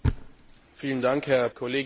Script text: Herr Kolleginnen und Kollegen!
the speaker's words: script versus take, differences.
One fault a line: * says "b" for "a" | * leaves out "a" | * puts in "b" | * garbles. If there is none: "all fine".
all fine